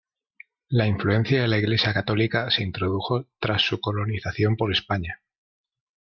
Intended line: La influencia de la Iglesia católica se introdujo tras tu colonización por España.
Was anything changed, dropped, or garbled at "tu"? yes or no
yes